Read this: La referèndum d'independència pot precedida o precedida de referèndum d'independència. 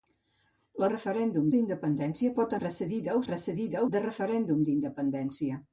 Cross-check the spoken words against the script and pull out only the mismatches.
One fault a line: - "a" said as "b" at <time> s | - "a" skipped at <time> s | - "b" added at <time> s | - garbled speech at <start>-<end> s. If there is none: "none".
none